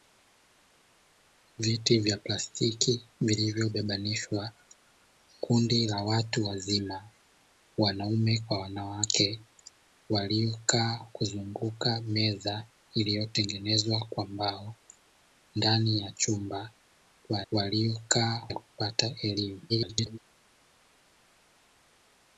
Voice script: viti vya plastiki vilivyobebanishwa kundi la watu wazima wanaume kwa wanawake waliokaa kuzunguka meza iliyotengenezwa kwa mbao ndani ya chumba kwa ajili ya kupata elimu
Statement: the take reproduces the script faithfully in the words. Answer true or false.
false